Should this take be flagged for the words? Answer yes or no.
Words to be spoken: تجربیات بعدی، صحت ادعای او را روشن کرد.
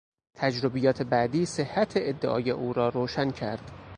no